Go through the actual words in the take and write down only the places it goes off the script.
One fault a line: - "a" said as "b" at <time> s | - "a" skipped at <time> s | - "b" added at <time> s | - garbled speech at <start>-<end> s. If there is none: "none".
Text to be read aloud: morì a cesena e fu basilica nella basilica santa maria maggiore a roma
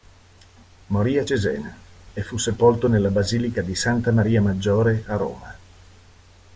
- "basilica" said as "sepolto" at 2.4 s
- "di" added at 3.6 s